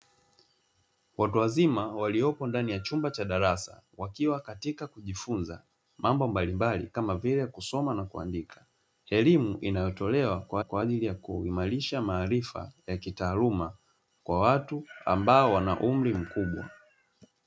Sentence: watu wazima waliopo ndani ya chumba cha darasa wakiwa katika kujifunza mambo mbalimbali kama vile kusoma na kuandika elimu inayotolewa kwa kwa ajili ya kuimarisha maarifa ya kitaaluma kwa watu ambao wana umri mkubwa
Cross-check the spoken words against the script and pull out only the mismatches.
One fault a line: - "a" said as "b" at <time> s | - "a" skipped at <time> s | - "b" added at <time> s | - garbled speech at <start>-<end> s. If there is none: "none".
none